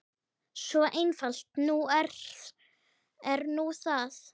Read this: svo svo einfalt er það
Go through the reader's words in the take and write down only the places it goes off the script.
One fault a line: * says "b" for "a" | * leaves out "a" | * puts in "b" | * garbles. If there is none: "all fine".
* leaves out "svo"
* puts in "nú"